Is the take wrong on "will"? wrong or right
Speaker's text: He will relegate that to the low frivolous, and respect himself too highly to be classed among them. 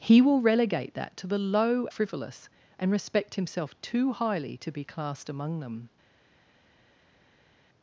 right